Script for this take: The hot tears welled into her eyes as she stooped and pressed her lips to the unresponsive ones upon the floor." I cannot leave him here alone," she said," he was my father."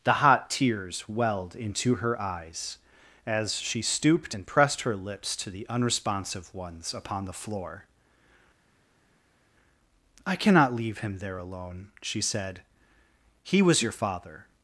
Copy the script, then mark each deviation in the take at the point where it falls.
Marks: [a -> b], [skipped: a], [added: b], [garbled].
The hot tears welled into her eyes as she stooped and pressed her lips to the unresponsive ones upon the floor." I cannot leave him [here -> there] alone," she said," he was [my -> your] father."